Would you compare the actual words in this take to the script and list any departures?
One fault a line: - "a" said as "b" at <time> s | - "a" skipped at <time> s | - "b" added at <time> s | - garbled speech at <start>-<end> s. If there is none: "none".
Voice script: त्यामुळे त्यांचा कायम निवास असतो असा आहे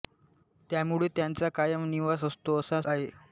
none